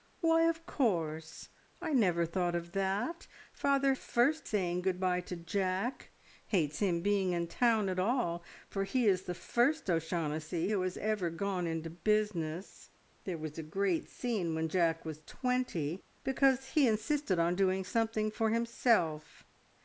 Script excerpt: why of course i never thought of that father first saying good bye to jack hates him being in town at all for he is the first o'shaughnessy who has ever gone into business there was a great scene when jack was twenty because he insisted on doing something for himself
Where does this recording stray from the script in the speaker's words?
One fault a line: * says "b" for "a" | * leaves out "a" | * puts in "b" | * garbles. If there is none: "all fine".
all fine